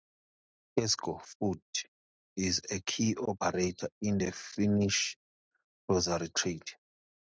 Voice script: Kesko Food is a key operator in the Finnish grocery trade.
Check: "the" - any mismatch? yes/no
no